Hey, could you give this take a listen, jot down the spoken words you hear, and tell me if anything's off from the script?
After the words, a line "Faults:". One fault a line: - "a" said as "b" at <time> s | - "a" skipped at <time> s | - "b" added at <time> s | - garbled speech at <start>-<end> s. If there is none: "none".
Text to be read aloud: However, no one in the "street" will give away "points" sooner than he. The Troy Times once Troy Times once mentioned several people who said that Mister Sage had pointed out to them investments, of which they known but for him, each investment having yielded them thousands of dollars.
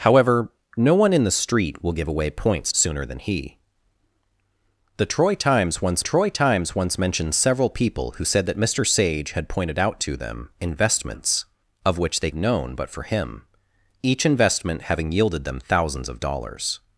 However, no one in the "street" will give away "points" sooner than he. The Troy Times once Troy Times once mentioned several people who said that Mister Sage had pointed out to them investments, of which they known but for him, each investment having yielded them thousands of dollars.
Faults:
none